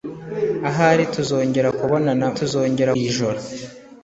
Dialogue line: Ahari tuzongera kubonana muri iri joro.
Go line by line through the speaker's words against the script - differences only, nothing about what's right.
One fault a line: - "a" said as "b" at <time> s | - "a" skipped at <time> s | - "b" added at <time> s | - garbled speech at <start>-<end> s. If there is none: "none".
- "muri" said as "tuzongera" at 2.4 s